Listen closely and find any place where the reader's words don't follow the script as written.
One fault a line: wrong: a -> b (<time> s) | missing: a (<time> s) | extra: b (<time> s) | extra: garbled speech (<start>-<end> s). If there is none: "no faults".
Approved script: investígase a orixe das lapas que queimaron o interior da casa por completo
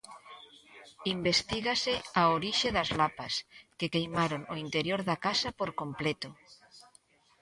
no faults